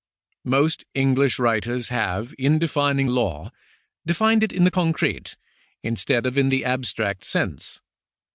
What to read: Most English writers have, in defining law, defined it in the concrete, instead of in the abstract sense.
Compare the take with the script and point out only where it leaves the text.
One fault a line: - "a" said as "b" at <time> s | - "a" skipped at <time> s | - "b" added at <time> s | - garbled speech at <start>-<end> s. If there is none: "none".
none